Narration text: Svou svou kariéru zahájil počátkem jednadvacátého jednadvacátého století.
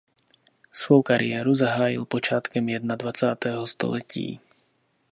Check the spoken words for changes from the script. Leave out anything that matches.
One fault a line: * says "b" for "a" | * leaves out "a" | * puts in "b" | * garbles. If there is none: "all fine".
* leaves out "svou"
* leaves out "jednadvacátého"